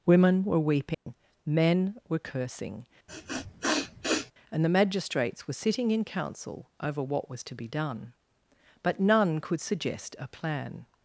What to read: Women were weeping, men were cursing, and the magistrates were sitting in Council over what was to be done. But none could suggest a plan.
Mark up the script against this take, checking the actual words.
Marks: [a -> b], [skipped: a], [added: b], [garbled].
Women were weeping, men were cursing, and the magistrates were sitting in Council over what was to be done. But none could suggest a plan.